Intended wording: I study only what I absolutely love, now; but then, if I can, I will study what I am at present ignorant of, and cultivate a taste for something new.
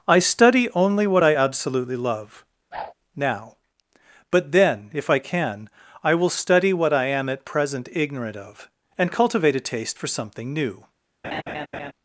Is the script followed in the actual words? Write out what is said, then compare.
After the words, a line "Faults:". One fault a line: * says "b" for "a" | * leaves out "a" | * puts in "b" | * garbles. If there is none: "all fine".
I study only what I absolutely love, now; but then, if I can, I will study what I am at present ignorant of, and cultivate a taste for something new.
Faults:
all fine